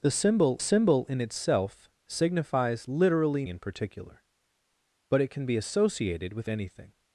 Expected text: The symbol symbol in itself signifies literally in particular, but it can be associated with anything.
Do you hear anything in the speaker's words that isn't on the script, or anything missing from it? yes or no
no